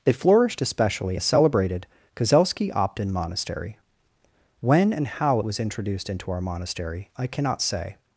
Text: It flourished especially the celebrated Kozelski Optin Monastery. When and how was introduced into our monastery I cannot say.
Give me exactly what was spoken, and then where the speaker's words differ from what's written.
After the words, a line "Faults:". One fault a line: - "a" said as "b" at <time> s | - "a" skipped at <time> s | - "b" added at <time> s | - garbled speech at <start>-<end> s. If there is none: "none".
It flourished especially the celebrated Kozelski Optin Monastery. When and how was introduced into our monastery I cannot say.
Faults:
none